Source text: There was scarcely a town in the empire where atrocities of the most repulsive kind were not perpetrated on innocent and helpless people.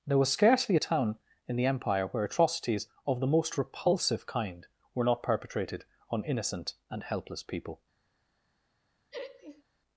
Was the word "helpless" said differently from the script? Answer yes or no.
no